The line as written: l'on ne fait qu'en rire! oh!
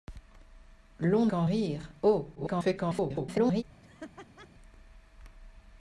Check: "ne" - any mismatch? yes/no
yes